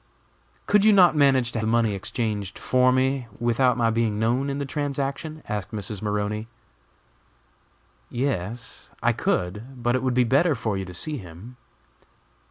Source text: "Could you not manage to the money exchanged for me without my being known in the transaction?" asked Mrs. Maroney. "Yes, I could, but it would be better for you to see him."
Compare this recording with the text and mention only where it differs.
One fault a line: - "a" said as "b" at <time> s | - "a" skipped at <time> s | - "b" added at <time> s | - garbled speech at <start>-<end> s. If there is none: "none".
none